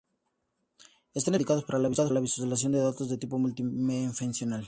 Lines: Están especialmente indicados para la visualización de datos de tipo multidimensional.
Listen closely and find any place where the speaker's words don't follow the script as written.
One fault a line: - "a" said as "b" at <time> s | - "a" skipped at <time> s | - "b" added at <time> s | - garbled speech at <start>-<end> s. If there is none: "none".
- "para" skipped at 1.6 s